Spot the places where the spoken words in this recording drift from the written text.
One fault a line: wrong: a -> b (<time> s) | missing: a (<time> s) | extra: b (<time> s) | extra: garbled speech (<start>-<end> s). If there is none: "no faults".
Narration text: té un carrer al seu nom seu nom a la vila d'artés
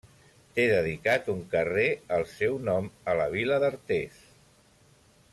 extra: dedicat (0.7 s)
missing: seu nom (2.9 s)